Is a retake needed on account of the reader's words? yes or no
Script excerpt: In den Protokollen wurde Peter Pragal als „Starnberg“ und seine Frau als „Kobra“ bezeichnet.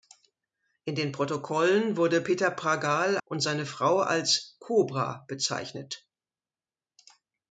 yes